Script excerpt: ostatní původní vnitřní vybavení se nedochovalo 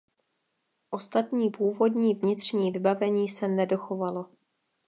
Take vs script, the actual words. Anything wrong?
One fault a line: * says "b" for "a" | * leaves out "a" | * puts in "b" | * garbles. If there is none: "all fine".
all fine